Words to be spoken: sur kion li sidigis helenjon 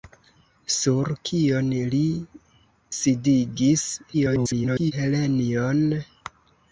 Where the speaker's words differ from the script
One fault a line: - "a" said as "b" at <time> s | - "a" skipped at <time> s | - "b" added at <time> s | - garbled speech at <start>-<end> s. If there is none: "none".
- garbled speech at 4.1-4.9 s